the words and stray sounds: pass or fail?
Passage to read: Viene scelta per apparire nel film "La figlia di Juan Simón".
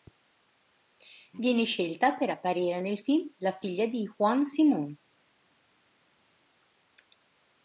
pass